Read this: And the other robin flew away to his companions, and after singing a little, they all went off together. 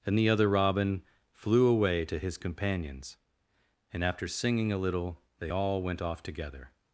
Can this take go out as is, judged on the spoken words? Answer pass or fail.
pass